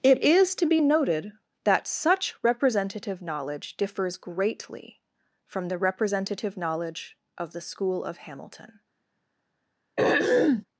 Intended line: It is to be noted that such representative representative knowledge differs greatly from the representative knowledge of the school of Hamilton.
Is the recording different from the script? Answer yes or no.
yes